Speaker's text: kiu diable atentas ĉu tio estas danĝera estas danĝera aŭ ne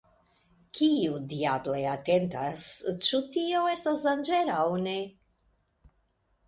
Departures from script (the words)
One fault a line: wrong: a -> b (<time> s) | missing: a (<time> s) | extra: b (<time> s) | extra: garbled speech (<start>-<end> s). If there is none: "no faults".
missing: estas danĝera (4.6 s)